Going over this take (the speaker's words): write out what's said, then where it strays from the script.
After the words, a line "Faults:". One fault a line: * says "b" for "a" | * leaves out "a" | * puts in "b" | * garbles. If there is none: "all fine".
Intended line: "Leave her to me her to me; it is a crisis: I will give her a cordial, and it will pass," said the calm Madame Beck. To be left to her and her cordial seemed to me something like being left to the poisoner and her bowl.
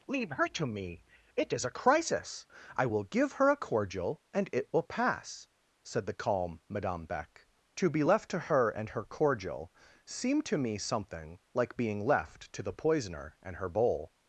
"Leave her to me; it is a crisis: I will give her a cordial, and it will pass," said the calm Madame Beck. To be left to her and her cordial seemed to me something like being left to the poisoner and her bowl.
Faults:
* leaves out "her to me"